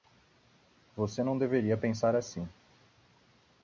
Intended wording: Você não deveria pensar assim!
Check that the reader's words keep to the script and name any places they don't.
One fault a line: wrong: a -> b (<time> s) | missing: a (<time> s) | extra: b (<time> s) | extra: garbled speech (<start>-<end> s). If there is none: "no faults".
no faults